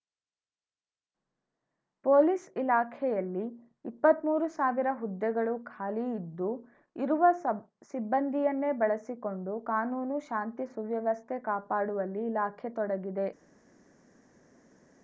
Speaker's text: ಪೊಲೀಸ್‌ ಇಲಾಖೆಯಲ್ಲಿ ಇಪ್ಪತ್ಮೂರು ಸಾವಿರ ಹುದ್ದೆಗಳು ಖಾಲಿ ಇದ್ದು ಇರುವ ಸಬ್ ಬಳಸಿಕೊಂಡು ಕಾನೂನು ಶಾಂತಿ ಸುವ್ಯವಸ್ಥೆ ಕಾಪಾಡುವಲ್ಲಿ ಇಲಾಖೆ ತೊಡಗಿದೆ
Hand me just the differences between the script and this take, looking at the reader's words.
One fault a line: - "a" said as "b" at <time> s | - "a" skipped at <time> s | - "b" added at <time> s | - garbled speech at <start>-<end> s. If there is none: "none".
- "ಸಿಬ್ಬಂದಿಯನ್ನೇ" added at 7.9 s